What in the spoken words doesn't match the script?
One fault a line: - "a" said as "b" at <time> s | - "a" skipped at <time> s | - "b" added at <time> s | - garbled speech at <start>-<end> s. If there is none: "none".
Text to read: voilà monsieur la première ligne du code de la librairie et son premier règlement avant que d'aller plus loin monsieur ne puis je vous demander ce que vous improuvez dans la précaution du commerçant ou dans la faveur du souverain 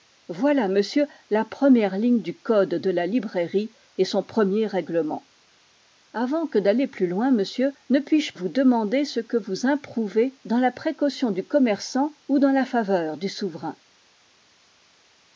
none